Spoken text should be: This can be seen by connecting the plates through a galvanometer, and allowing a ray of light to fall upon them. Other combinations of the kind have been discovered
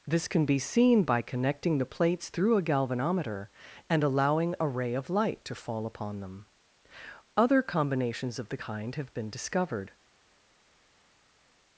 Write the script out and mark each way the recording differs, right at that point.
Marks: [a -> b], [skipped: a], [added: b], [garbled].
This can be seen by connecting the plates through a galvanometer, and allowing a ray of light to fall upon them. Other combinations of the kind have been discovered